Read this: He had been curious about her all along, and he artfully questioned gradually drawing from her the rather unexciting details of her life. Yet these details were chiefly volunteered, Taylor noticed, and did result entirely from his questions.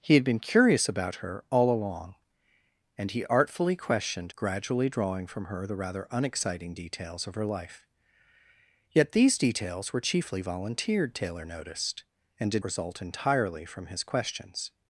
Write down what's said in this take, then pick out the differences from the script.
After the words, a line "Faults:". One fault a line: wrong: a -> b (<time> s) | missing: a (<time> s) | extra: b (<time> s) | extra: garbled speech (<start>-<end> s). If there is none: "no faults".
He had been curious about her all along, and he artfully questioned gradually drawing from her the rather unexciting details of her life. Yet these details were chiefly volunteered, Taylor noticed, and did result entirely from his questions.
Faults:
no faults